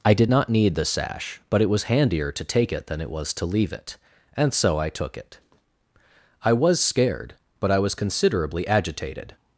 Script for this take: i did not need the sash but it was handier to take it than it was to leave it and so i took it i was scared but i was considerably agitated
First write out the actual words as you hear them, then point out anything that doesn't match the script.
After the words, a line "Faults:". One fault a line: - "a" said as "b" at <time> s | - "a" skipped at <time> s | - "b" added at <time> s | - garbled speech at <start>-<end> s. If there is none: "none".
i did not need the sash but it was handier to take it than it was to leave it and so i took it i was scared but i was considerably agitated
Faults:
none